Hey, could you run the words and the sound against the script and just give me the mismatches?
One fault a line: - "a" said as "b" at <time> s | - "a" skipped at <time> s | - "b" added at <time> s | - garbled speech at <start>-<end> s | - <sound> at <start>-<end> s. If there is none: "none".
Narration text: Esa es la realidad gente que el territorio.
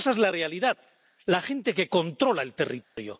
- "la" added at 1.2 s
- "controla" added at 1.9 s
- dropout at 2.8-3.0 s